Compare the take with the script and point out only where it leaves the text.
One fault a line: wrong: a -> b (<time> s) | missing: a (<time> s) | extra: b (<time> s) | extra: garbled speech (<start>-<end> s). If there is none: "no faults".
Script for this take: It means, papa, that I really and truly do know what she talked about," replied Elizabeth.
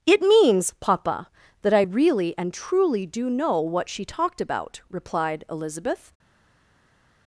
no faults